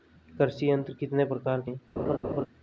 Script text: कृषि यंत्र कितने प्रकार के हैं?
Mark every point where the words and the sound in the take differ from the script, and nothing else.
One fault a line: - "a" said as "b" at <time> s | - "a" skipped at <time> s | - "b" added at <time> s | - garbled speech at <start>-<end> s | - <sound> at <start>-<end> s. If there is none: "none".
- laugh at 2.0-2.5 s